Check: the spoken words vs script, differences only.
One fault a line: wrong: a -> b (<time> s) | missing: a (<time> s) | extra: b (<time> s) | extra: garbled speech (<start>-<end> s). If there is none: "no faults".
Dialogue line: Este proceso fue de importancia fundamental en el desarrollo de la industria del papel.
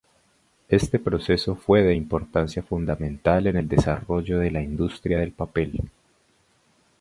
no faults